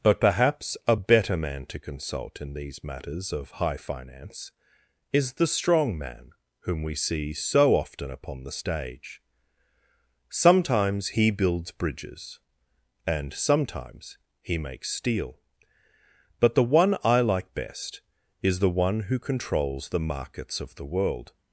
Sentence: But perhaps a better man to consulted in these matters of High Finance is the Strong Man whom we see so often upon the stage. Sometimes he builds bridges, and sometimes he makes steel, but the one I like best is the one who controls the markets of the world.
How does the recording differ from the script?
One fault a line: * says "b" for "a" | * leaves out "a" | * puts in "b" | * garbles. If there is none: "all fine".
* says "consult" for "consulted"